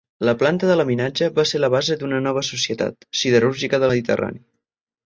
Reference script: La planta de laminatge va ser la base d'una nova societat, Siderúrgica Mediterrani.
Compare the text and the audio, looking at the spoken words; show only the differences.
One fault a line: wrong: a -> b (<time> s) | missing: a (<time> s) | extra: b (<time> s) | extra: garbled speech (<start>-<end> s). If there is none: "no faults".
no faults